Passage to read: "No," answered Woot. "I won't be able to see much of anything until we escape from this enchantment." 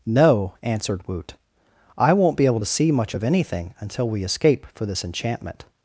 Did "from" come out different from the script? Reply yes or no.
yes